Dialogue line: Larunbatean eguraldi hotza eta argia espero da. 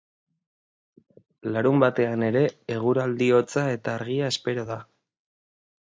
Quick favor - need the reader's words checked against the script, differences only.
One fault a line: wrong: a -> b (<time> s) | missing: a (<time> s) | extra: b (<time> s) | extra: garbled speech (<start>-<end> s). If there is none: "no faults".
extra: ere (2.3 s)